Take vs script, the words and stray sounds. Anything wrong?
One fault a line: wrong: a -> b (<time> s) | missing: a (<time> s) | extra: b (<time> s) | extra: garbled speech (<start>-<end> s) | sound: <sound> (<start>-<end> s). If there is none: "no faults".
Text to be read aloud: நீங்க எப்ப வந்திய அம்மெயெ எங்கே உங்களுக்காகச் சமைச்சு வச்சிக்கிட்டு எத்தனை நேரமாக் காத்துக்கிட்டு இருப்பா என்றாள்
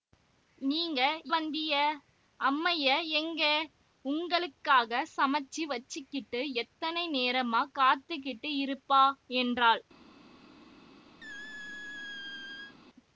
missing: எப்ப (1.0 s)
sound: squeak (11.2-12.8 s)